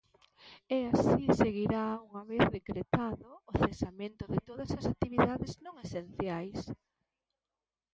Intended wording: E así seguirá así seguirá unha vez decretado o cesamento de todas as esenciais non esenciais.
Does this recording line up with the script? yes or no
no